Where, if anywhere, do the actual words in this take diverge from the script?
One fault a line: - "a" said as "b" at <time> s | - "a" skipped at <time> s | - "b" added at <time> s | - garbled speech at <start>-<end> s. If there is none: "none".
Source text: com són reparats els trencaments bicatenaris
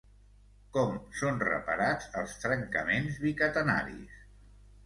none